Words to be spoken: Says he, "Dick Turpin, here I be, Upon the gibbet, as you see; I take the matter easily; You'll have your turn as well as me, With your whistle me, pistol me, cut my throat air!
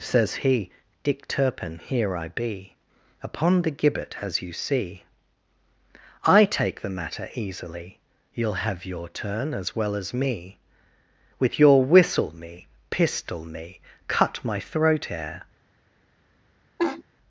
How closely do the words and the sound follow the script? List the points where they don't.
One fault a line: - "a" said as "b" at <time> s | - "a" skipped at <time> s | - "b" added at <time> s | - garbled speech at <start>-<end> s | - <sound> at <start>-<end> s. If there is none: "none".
- laugh at 16.8-17.0 s